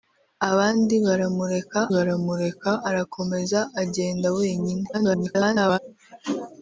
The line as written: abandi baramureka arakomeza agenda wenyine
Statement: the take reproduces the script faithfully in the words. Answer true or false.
false